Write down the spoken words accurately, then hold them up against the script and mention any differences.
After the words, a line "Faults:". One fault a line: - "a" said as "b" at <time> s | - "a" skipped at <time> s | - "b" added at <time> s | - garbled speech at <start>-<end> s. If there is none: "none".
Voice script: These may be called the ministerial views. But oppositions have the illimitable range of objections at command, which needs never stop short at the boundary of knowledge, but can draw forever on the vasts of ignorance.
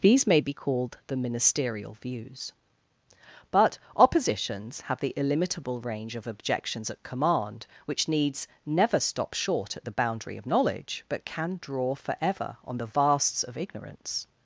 These may be called the ministerial views. But oppositions have the illimitable range of objections at command, which needs never stop short at the boundary of knowledge, but can draw forever on the vasts of ignorance.
Faults:
none